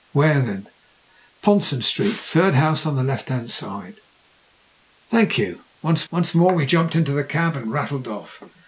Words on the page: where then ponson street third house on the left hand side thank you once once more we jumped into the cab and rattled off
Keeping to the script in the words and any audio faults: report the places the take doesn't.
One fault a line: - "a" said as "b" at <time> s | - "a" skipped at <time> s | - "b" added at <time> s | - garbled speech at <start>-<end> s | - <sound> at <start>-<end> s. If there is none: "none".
none